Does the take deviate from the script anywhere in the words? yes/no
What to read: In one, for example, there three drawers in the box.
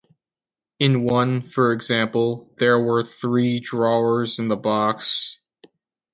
yes